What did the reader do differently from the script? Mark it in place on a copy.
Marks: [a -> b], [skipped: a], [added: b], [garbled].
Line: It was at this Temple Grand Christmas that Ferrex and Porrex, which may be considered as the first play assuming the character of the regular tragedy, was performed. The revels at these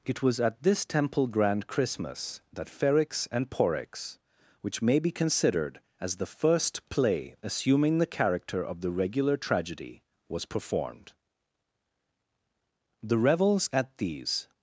It was at this Temple Grand Christmas that Ferrex and Porrex, which may be considered as the first play assuming the character of the regular tragedy, was performed. The revels at these